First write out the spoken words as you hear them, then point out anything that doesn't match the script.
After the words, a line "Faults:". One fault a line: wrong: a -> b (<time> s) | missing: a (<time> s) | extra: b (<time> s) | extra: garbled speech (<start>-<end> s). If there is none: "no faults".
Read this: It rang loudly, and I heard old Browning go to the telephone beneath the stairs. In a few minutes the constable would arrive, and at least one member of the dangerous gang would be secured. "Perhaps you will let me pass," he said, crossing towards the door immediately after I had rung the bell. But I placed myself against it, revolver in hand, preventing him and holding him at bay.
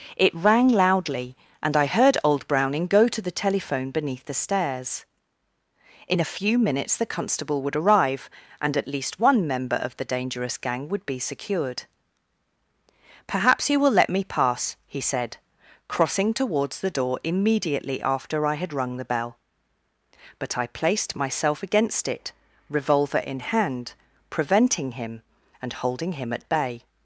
It rang loudly, and I heard old Browning go to the telephone beneath the stairs. In a few minutes the constable would arrive, and at least one member of the dangerous gang would be secured. "Perhaps you will let me pass," he said, crossing towards the door immediately after I had rung the bell. But I placed myself against it, revolver in hand, preventing him and holding him at bay.
Faults:
no faults